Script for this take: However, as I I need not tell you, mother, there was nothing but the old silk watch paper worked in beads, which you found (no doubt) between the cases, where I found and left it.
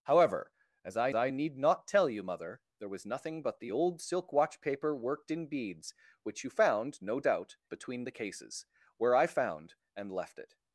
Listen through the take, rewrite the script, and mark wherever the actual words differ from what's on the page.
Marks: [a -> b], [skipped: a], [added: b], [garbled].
However, as I I need not tell you, mother, there was nothing but the old silk watch paper worked in beads, which you found (no doubt) between the cases, where I found and left it.